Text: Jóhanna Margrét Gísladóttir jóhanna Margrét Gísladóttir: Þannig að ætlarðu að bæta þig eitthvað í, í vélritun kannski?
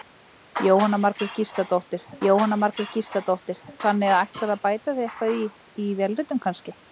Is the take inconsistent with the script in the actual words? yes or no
no